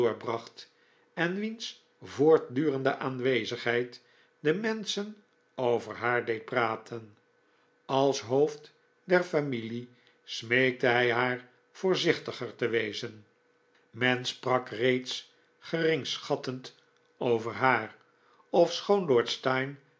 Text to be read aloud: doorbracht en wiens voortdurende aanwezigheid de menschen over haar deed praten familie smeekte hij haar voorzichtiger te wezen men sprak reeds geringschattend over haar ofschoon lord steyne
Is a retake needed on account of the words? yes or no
yes